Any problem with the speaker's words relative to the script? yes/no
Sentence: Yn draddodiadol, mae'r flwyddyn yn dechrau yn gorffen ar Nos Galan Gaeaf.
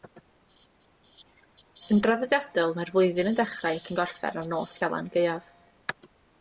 yes